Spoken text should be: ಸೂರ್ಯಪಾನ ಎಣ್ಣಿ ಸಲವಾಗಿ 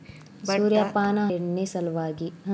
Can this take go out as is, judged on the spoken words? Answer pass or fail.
pass